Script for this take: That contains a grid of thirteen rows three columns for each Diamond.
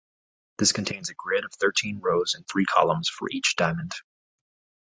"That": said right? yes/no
no